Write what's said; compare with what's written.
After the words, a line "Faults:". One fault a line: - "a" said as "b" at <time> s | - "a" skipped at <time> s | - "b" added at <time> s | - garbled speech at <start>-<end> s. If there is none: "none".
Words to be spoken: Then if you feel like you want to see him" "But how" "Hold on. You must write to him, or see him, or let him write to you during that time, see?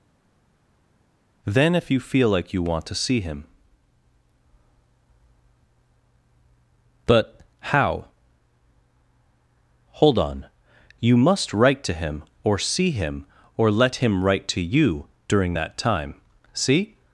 Then if you feel like you want to see him" "But how" "Hold on. You must write to him, or see him, or let him write to you during that time, see?
Faults:
none